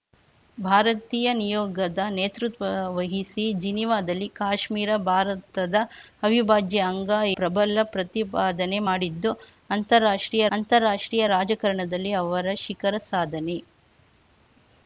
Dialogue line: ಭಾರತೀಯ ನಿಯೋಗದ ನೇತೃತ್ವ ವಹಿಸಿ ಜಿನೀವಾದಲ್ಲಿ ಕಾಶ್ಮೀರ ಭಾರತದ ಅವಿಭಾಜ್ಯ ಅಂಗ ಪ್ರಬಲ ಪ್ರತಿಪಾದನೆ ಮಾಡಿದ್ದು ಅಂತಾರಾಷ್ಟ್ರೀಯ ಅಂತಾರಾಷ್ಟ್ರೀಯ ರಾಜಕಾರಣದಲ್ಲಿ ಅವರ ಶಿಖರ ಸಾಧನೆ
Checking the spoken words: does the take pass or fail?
pass